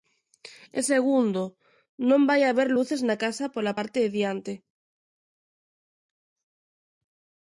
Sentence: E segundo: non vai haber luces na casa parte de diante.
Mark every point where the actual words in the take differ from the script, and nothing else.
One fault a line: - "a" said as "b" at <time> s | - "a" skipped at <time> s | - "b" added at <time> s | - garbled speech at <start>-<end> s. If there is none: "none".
- "pola" added at 3.6 s